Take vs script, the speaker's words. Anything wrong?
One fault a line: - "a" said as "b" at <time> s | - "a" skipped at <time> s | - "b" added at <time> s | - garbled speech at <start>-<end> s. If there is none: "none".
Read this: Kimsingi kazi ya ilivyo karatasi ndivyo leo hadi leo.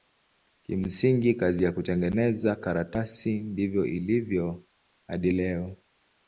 - "ilivyo" said as "kutengeneza" at 1.7 s
- "leo" said as "ilivyo" at 3.9 s